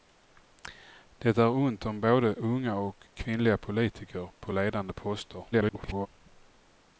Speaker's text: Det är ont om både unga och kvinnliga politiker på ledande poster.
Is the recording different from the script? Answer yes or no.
yes